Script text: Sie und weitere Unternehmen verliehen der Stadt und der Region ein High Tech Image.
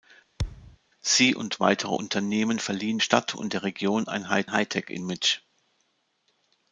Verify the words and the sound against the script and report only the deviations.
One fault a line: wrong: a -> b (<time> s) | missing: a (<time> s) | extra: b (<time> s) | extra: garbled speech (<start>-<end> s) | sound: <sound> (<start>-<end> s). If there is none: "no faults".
sound: thud (0.4-0.8 s)
missing: der (3.0 s)
extra: High (4.5 s)